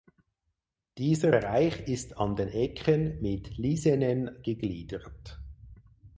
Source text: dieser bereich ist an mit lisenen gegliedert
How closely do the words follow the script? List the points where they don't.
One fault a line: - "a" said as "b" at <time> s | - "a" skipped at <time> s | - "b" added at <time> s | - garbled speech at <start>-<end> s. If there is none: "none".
- "den ecken" added at 2.4 s